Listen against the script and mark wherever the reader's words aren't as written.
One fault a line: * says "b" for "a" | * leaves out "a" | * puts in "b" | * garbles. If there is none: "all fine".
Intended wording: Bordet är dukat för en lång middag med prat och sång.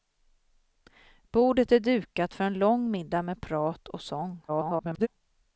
* garbles